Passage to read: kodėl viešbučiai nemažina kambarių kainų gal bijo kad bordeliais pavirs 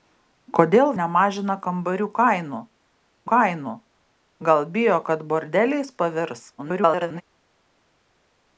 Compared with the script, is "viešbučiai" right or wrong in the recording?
wrong